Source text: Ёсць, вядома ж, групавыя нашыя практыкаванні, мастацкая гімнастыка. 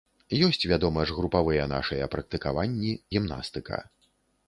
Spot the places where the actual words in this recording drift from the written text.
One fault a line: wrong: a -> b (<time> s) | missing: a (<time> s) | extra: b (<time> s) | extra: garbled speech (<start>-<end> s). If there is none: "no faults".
missing: мастацкая (3.0 s)